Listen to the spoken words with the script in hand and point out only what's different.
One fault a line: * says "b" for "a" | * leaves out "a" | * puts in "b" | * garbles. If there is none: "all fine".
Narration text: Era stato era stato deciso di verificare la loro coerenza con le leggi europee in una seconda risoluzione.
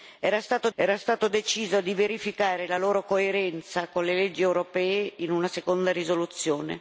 all fine